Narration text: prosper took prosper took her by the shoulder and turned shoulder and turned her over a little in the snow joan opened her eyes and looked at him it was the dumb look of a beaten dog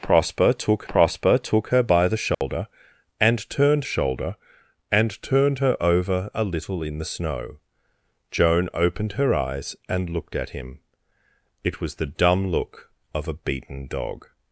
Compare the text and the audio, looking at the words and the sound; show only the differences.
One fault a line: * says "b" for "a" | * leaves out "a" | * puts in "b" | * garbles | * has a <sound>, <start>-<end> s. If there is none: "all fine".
* has a dropout, 2.3-2.4 s